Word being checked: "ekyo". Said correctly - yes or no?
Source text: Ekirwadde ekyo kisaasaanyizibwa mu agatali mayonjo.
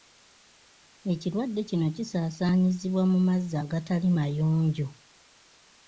no